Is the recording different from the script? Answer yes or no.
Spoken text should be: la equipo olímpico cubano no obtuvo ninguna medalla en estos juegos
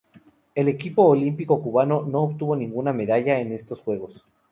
yes